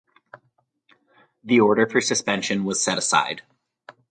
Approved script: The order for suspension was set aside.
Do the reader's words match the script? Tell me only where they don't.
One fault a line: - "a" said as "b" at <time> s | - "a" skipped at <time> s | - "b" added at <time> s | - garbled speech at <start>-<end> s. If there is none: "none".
none